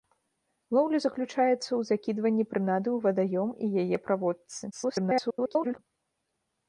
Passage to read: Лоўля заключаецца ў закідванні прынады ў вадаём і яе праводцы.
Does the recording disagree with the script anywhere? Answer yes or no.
yes